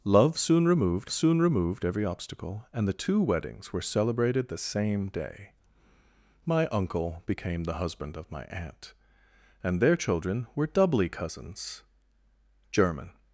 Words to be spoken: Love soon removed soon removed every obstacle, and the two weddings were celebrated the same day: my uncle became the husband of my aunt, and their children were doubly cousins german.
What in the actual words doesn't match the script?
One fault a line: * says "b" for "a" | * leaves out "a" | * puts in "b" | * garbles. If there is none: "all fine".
all fine